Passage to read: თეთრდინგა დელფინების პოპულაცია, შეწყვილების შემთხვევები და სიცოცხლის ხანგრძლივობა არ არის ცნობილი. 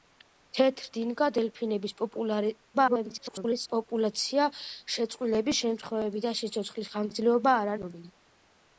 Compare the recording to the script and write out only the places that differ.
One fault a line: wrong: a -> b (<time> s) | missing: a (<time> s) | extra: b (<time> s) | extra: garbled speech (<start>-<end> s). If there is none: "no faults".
extra: garbled speech (2.7-3.7 s)
missing: არის (7.8 s)